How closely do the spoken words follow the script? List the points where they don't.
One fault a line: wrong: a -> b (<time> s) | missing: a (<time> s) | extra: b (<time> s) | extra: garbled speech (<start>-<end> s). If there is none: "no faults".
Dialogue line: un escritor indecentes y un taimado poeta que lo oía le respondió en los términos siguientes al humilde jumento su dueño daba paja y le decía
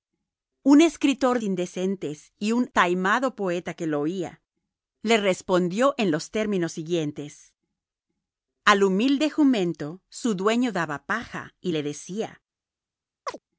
no faults